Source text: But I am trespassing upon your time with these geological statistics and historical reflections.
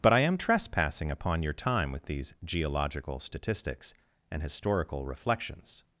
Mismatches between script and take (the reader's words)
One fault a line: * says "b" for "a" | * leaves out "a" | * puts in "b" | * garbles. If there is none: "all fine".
all fine